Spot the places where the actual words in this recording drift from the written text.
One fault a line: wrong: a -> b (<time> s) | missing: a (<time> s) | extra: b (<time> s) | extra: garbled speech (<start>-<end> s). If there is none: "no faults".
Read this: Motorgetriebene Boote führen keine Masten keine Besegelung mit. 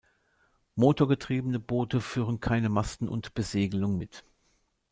wrong: keine -> und (3.1 s)